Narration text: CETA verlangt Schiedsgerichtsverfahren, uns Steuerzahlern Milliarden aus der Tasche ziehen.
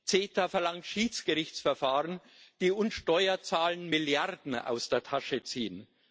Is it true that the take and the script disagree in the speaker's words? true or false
true